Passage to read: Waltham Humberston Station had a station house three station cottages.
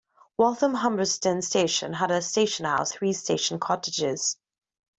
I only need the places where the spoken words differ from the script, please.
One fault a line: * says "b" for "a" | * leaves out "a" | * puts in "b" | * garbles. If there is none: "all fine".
all fine